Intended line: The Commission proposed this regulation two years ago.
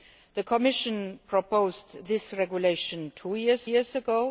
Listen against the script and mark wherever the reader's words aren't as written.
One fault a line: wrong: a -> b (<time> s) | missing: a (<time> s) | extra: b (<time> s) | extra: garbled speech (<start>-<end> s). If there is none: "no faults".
extra: years (3.6 s)